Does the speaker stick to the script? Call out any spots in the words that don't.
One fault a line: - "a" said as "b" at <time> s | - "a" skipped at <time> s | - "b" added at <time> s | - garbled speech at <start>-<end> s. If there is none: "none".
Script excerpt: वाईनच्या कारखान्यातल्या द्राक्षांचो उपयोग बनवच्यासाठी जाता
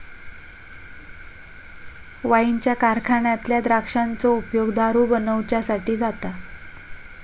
- "दारू" added at 4.7 s